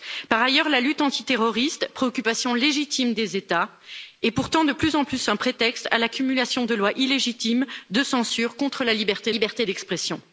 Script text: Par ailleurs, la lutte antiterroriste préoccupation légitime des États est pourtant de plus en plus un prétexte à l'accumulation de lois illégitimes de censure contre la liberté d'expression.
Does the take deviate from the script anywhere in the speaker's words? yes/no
yes